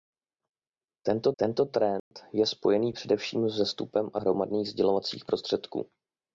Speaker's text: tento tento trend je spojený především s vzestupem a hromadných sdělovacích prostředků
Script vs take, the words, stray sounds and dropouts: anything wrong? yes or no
yes